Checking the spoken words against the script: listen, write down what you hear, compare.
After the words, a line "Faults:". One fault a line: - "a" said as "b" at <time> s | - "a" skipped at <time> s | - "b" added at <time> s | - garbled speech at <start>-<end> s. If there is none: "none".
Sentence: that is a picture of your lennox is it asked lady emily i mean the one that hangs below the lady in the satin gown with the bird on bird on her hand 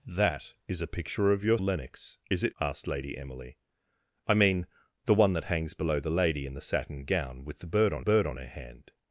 that is a picture of your lennox is it asked lady emily i mean the one that hangs below the lady in the satin gown with the bird on bird on her hand
Faults:
none